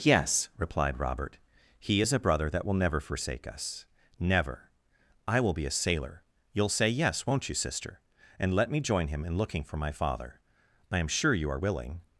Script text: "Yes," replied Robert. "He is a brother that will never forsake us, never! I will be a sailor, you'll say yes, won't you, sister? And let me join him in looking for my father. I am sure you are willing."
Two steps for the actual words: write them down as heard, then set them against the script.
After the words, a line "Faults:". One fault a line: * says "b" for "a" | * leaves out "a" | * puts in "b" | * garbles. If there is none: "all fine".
"Yes," replied Robert. "He is a brother that will never forsake us, never! I will be a sailor, you'll say yes, won't you, sister? And let me join him in looking for my father. I am sure you are willing."
Faults:
all fine